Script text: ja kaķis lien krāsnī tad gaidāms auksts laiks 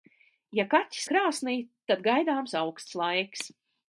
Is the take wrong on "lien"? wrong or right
wrong